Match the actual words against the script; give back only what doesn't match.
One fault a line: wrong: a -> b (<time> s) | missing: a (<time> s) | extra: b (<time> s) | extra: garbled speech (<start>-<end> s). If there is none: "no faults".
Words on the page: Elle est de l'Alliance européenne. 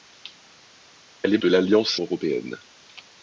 no faults